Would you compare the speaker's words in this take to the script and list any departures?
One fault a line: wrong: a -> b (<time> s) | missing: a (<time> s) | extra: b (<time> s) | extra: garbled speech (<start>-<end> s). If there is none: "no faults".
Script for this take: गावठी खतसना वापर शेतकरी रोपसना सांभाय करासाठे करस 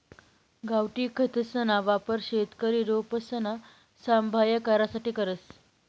no faults